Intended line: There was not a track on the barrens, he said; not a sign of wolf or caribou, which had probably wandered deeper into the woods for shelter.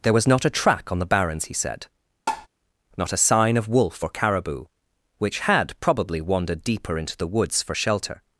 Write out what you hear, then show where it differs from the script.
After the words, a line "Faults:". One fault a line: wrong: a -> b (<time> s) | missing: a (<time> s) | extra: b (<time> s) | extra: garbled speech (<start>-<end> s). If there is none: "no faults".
There was not a track on the barrens, he said; not a sign of wolf or caribou, which had probably wandered deeper into the woods for shelter.
Faults:
no faults